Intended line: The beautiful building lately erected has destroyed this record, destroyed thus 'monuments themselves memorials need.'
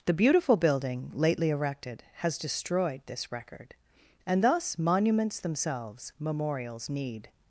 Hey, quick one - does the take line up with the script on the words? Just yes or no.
no